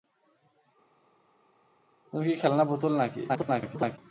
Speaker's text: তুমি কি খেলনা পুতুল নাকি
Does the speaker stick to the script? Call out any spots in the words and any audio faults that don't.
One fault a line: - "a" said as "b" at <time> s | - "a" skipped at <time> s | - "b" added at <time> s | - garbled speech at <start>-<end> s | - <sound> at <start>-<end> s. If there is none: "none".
- garbled speech at 3.3-4.0 s